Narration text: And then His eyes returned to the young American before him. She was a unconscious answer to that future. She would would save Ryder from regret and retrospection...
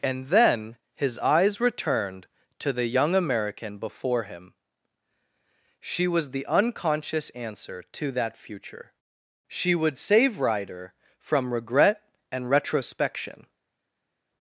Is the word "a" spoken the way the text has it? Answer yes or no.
no